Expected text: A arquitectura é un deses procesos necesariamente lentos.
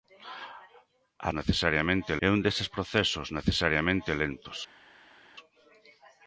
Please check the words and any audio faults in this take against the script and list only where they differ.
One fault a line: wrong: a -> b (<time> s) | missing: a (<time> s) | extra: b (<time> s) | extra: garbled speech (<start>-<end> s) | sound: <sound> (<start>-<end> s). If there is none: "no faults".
wrong: arquitectura -> necesariamente (1.4 s)